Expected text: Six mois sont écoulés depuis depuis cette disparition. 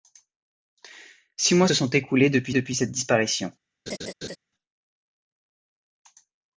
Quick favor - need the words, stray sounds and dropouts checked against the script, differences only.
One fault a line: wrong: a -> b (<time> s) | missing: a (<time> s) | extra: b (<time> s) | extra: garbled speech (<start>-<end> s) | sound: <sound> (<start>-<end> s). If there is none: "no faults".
sound: laugh (3.9-4.4 s)